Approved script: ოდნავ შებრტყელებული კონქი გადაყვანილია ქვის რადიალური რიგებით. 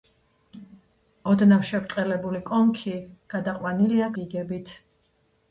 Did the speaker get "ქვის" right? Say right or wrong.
wrong